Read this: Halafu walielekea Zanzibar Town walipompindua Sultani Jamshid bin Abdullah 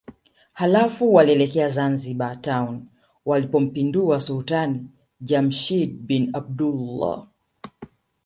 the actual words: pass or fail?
pass